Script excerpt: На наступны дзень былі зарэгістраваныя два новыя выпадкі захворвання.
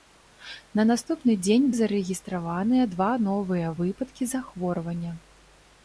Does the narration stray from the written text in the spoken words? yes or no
yes